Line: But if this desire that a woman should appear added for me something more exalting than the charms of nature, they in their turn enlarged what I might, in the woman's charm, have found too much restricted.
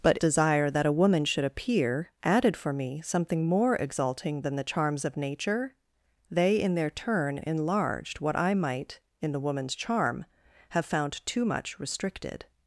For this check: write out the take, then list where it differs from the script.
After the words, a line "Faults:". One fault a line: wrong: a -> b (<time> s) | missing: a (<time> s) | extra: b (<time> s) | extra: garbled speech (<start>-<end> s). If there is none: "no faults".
But desire that a woman should appear added for me something more exalting than the charms of nature, they in their turn enlarged what I might, in the woman's charm, have found too much restricted.
Faults:
missing: if this (0.2 s)